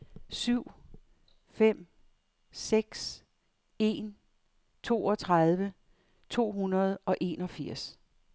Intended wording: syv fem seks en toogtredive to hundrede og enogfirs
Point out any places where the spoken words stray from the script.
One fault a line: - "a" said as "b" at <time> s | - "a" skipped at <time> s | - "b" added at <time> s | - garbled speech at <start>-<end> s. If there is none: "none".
none